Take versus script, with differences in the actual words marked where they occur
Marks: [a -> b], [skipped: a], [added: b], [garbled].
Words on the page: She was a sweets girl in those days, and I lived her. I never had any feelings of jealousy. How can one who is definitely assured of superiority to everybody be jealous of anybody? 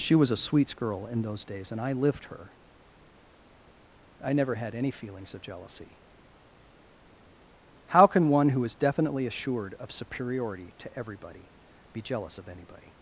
She was a sweets girl in those days, and I lived her. I never had any feelings of jealousy. How can one who is definitely assured of superiority to everybody be jealous of anybody?